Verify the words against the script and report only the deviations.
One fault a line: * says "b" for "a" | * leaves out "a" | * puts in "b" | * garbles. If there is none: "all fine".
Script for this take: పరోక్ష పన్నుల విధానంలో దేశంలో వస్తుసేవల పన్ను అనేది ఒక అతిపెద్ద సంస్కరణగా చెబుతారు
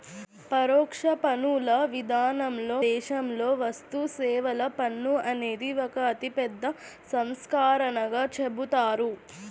all fine